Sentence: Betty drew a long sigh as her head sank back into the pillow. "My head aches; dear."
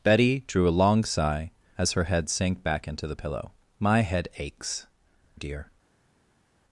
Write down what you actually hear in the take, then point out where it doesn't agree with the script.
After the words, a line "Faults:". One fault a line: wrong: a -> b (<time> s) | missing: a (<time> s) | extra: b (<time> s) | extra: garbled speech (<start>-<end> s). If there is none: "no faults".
Betty drew a long sigh as her head sank back into the pillow. "My head aches; dear."
Faults:
no faults